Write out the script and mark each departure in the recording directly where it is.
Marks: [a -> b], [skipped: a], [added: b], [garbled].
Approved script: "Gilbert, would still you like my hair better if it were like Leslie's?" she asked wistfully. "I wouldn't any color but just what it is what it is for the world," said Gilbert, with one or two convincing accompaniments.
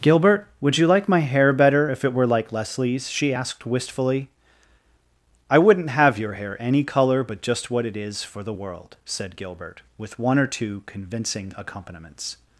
"Gilbert, would [skipped: still] you like my hair better if it were like Leslie's?" she asked wistfully. "I wouldn't [added: have your hair] any color but just what it is [skipped: what it is] for the world," said Gilbert, with one or two convincing accompaniments.